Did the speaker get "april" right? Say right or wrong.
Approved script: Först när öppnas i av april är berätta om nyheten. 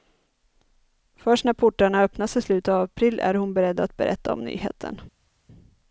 right